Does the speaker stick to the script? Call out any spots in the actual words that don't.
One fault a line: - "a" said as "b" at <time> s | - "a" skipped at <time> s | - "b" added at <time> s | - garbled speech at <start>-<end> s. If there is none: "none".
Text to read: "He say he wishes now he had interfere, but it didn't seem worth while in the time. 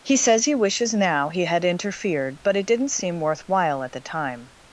- "say" said as "says" at 0.2 s
- "interfere" said as "interfered" at 1.6 s
- "in" said as "at" at 3.8 s